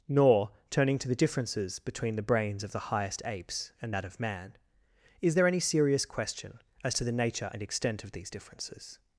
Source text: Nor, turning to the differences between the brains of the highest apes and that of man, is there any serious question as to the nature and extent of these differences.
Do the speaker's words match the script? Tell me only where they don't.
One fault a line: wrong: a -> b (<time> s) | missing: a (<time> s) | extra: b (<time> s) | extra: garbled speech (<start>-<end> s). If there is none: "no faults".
no faults